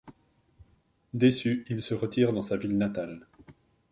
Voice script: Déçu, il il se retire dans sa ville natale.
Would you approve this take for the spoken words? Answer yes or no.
no